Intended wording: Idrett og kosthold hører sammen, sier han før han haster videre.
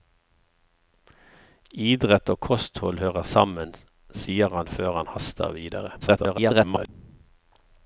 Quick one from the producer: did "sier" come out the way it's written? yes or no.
yes